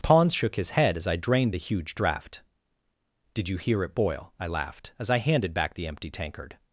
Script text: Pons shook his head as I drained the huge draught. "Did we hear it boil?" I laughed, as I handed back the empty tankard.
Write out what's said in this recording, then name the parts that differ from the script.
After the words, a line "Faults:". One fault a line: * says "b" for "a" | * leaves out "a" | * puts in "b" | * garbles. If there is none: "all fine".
Pons shook his head as I drained the huge draught. "Did you hear it boil?" I laughed, as I handed back the empty tankard.
Faults:
* says "you" for "we"